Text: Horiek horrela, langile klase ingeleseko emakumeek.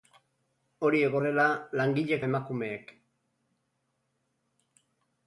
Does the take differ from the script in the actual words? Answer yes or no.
yes